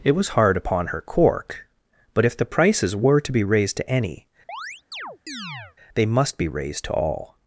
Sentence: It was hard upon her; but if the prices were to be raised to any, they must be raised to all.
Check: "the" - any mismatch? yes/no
no